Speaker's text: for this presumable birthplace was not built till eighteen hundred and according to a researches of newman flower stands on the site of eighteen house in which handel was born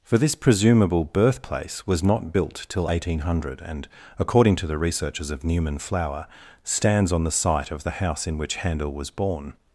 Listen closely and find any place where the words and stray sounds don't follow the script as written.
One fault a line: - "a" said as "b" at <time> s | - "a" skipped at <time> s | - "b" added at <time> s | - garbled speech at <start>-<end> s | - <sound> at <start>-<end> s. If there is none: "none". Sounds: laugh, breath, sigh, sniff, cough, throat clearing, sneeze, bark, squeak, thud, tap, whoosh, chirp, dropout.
- "a" said as "the" at 4.7 s
- "eighteen" said as "the" at 7.8 s